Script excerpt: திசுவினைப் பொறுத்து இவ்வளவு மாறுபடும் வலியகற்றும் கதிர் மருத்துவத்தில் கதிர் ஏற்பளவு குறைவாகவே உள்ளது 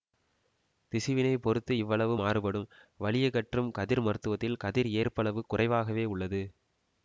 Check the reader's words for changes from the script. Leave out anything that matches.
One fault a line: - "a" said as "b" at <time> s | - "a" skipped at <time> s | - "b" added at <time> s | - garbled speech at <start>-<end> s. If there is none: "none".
none